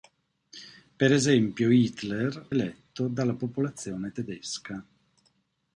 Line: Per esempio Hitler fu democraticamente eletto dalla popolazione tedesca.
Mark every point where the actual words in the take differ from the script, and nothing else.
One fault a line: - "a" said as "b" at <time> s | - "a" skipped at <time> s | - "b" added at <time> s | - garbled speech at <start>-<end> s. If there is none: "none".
- "fu democraticamente" skipped at 2.5 s